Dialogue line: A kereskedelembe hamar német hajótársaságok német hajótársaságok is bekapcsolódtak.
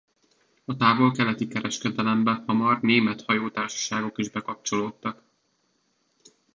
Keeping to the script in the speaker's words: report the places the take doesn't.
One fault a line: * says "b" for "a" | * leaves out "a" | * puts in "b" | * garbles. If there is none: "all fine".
* puts in "távol keleti"
* leaves out "német hajótársaságok"